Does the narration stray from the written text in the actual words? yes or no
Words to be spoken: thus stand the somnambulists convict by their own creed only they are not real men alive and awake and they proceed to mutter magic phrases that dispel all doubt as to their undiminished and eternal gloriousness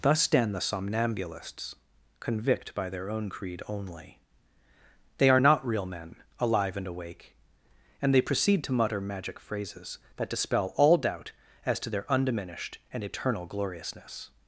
no